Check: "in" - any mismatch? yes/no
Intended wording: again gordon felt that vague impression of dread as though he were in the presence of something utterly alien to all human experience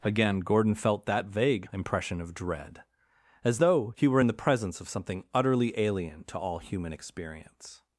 no